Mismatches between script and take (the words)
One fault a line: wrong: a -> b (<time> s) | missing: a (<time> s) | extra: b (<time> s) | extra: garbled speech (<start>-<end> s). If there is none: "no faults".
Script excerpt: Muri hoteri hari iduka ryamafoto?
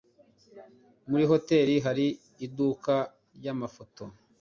no faults